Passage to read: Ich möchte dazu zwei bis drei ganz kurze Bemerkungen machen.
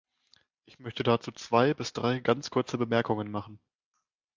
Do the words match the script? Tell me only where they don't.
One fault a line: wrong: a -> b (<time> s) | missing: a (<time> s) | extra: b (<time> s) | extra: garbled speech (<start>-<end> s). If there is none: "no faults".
no faults